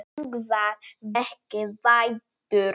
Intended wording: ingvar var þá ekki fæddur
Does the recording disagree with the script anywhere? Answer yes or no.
yes